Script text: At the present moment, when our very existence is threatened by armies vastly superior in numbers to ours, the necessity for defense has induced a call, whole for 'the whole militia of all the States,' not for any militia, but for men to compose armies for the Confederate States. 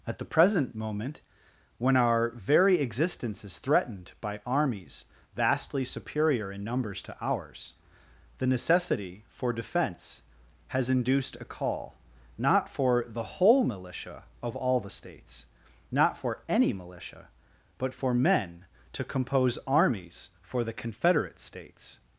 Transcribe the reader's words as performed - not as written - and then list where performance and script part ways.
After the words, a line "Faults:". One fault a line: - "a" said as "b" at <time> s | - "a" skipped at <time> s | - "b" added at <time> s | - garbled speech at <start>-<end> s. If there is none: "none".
At the present moment, when our very existence is threatened by armies vastly superior in numbers to ours, the necessity for defense has induced a call, not for 'the whole militia of all the States,' not for any militia, but for men to compose armies for the Confederate States.
Faults:
- "whole" said as "not" at 12.4 s